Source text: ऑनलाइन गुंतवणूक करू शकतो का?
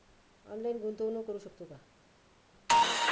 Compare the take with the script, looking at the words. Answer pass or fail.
pass